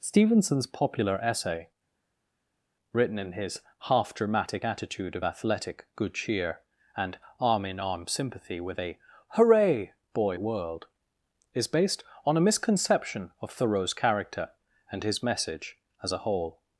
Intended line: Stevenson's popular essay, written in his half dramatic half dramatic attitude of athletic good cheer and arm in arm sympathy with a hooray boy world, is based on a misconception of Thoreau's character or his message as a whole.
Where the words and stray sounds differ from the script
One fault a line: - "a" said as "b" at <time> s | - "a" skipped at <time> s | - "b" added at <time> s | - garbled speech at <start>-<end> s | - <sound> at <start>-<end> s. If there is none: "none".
- "half dramatic" skipped at 4.6 s
- "or" said as "and" at 14.9 s